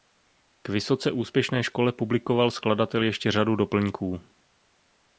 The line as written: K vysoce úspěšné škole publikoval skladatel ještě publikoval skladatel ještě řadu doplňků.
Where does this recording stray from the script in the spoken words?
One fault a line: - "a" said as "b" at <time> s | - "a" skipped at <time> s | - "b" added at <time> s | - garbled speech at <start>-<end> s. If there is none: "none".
- "publikoval skladatel ještě" skipped at 3.3 s